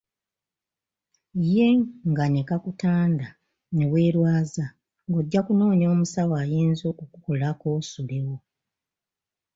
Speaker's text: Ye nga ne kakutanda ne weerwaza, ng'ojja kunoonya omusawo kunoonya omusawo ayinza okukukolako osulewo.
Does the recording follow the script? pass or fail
fail